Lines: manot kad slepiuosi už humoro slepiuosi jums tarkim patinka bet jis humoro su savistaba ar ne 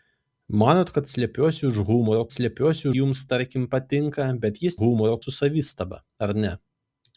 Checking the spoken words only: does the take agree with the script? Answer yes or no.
yes